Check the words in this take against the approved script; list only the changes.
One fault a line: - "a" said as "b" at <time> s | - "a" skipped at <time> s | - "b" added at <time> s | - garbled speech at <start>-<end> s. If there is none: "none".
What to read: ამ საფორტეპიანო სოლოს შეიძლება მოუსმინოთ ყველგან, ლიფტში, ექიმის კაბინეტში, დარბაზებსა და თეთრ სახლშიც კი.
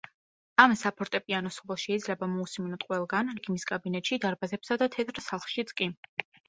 - "ლიფტში" skipped at 3.3 s